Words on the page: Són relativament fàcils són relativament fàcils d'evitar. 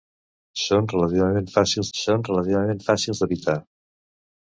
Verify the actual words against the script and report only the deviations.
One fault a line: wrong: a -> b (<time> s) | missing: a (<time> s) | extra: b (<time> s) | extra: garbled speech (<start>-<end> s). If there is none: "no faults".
no faults